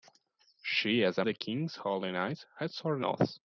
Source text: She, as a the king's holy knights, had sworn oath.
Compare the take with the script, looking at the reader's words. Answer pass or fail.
pass